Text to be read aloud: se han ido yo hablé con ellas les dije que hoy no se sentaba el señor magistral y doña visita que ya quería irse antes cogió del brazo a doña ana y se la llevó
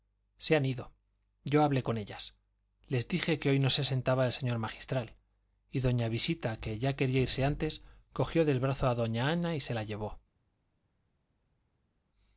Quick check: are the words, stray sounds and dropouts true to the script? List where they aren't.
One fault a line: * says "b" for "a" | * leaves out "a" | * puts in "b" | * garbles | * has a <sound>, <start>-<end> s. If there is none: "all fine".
all fine